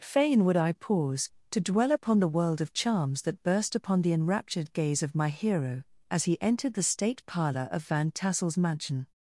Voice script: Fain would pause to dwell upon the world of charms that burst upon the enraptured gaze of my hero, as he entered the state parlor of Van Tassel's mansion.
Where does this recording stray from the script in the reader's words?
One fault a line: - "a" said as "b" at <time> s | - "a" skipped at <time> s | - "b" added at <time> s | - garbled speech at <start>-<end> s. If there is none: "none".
- "I" added at 0.6 s